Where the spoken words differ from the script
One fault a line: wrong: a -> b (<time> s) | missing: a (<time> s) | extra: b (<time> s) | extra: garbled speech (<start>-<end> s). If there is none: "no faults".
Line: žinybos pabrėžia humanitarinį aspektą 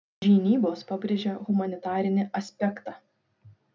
no faults